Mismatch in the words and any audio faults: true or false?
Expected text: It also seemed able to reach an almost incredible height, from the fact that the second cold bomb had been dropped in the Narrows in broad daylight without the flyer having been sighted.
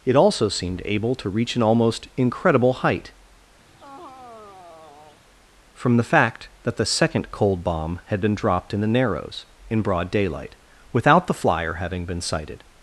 true